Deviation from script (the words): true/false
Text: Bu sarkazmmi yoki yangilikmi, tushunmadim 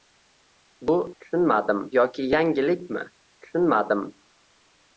true